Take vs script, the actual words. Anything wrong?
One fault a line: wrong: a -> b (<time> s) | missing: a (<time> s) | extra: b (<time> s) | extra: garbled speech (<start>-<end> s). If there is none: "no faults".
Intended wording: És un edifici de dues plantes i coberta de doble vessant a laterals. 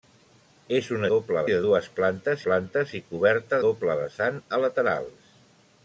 wrong: edifici -> doble (1.1 s)
extra: plantes (2.5 s)
missing: de (3.6 s)